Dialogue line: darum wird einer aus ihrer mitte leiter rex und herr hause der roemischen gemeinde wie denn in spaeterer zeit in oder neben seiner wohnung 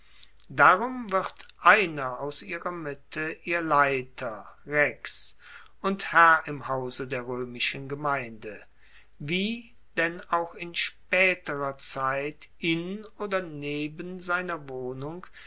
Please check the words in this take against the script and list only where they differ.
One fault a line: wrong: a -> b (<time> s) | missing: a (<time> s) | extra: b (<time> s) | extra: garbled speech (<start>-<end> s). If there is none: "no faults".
extra: ihr (3.4 s)
extra: im (6.4 s)
extra: auch (10.3 s)